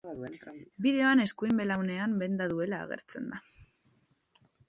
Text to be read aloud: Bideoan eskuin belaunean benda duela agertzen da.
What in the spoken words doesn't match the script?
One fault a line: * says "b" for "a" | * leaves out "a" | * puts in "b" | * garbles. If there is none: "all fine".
all fine